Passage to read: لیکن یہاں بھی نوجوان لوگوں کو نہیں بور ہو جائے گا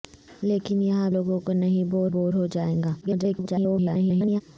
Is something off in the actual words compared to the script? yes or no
yes